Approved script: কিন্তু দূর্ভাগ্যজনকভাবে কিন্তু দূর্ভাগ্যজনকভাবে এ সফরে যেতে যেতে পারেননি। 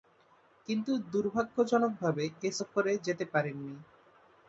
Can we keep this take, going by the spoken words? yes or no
no